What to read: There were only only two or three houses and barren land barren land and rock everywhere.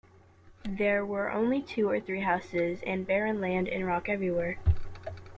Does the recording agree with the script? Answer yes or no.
no